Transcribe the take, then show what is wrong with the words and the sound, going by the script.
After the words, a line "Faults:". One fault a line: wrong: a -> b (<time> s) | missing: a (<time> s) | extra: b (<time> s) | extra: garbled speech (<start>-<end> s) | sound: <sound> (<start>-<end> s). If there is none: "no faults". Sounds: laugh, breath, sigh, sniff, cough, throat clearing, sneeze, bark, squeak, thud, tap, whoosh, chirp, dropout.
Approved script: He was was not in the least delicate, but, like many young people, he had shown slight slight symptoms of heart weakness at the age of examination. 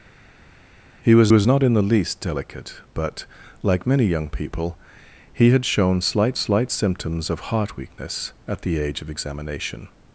He was was not in the least delicate, but, like many young people, he had shown slight slight symptoms of heart weakness at the age of examination.
Faults:
no faults